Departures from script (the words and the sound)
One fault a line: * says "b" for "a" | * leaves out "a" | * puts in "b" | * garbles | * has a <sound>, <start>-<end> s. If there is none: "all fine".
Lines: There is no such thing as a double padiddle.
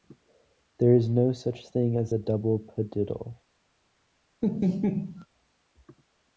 * has a laugh, 4.4-5.3 s